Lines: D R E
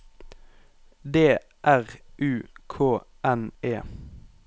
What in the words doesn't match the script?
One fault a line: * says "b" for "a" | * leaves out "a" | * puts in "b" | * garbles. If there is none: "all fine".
* puts in "U K N"